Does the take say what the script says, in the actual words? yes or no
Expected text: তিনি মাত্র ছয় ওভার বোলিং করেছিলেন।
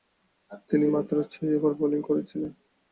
yes